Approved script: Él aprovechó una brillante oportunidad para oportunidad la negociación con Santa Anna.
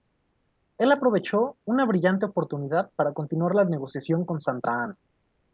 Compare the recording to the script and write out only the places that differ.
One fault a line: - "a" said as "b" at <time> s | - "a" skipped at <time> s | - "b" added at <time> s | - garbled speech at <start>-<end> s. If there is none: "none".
- "oportunidad" said as "continuar" at 3.1 s